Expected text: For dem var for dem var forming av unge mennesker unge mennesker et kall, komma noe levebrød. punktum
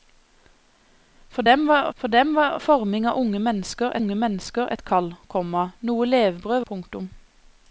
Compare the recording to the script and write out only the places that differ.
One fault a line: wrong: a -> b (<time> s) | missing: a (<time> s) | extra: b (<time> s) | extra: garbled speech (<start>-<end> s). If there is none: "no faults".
no faults